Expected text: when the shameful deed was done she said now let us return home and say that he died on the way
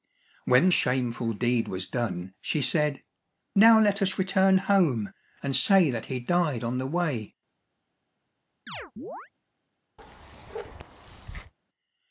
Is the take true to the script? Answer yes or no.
no